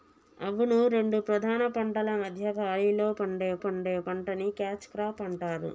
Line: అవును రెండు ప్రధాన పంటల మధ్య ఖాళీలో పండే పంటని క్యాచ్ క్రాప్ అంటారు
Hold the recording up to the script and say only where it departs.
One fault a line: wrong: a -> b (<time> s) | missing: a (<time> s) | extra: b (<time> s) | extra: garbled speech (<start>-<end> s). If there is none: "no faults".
extra: పండే (3.6 s)